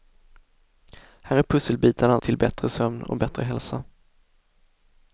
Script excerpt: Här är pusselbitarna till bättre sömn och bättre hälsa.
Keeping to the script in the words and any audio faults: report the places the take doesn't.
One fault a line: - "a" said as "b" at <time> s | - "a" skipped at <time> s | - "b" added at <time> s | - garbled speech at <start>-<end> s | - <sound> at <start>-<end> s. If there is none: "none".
none